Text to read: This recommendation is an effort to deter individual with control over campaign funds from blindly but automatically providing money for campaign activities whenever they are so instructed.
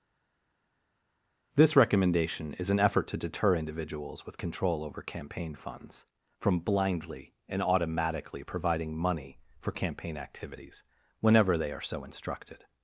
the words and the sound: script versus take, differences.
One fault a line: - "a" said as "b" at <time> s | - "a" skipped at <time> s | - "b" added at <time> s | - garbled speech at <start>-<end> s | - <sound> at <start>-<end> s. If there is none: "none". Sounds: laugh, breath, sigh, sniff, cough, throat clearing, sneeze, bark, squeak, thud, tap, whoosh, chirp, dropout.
- "individual" said as "individuals" at 3.6 s
- "but" said as "and" at 7.5 s